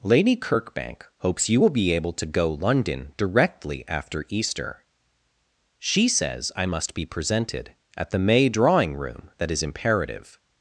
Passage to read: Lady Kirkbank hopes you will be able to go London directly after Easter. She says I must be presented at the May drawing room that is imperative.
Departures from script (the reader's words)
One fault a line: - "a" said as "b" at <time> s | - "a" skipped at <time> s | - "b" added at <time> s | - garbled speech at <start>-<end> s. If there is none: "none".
none